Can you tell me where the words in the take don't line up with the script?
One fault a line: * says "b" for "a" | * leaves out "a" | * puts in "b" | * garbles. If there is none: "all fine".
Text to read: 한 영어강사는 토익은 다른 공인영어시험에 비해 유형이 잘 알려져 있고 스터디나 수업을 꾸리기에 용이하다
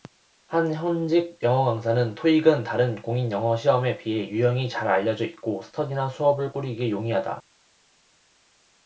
* puts in "현직"